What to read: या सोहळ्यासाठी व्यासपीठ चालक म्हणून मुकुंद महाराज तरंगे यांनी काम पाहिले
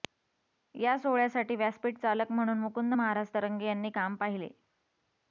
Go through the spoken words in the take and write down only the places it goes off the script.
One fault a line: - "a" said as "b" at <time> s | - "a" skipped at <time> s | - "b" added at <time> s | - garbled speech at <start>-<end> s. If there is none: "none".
none